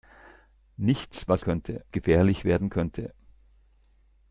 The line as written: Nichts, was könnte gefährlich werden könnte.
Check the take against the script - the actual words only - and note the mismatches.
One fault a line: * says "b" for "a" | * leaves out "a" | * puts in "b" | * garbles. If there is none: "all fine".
all fine